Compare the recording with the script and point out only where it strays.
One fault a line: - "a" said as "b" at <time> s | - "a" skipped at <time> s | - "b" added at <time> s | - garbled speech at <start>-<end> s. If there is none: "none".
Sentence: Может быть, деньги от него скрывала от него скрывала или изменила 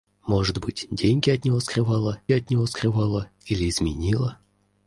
none